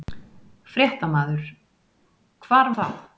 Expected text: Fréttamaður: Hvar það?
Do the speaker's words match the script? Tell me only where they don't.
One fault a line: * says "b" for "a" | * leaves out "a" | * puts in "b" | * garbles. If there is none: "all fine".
all fine